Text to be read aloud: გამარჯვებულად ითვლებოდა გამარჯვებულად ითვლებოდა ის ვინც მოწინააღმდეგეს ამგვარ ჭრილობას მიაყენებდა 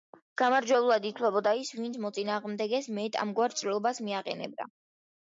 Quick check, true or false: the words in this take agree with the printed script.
false